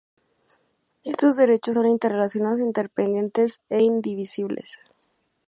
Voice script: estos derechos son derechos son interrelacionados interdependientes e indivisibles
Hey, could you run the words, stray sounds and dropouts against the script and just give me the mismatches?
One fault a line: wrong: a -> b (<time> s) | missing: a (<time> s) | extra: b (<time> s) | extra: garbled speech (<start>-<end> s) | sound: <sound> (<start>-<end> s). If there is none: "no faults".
missing: derechos son (1.9 s)